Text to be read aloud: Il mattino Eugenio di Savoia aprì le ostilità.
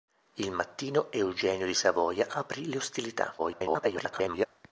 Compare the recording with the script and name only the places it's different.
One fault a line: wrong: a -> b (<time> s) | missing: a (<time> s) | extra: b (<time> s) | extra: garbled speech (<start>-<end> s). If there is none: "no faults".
extra: garbled speech (3.4-4.5 s)